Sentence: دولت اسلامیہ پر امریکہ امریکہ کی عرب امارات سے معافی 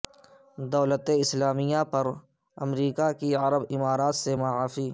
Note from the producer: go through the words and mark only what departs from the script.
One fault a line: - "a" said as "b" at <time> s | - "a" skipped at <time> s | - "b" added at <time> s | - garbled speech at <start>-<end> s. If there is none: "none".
- "امریکہ" skipped at 3.1 s